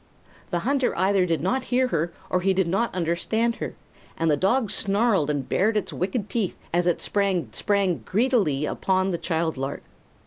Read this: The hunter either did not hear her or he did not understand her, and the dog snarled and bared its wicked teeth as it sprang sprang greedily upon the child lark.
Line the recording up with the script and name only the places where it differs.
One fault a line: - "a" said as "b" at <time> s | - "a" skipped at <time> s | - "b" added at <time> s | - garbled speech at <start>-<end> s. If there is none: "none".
none